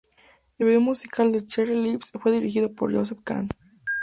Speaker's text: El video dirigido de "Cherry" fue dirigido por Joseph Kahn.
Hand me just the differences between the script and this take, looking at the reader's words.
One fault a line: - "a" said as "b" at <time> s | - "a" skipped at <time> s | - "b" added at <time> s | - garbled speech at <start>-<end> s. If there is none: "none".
- "dirigido" said as "musical" at 0.8 s
- "lips" added at 1.7 s